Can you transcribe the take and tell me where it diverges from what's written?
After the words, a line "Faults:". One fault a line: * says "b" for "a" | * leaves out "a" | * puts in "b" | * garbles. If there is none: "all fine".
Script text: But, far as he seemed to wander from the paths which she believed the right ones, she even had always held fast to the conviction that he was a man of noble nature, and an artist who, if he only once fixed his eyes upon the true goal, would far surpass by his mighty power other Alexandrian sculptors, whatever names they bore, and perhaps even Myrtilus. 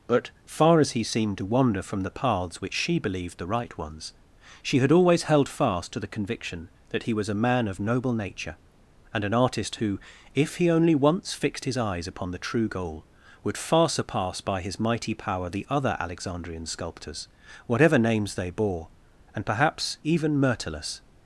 But, far as he seemed to wander from the paths which she believed the right ones, she had always held fast to the conviction that he was a man of noble nature, and an artist who, if he only once fixed his eyes upon the true goal, would far surpass by his mighty power the other Alexandrian sculptors, whatever names they bore, and perhaps even Myrtilus.
Faults:
* leaves out "even"
* puts in "the"